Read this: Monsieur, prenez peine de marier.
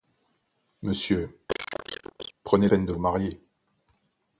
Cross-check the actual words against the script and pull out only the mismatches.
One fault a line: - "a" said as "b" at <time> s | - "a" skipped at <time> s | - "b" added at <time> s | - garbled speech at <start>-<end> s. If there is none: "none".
none